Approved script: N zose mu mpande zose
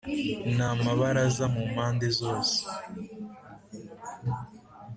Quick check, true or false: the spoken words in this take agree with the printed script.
false